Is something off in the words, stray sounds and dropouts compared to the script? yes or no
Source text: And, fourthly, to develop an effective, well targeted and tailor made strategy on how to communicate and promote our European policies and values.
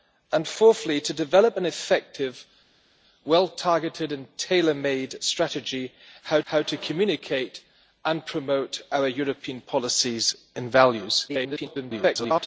yes